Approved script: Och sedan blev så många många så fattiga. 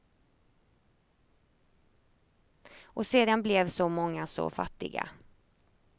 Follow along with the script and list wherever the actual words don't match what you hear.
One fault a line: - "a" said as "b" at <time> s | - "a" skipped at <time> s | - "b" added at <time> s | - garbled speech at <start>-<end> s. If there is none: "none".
- "många" skipped at 4.3 s